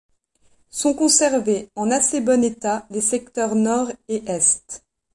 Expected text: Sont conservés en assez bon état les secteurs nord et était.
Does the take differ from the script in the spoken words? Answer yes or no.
yes